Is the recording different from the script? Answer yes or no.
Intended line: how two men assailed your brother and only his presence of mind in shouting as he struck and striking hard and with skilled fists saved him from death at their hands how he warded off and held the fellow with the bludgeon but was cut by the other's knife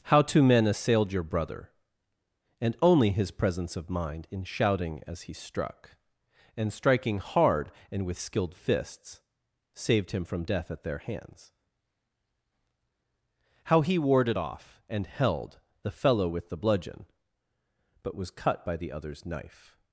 no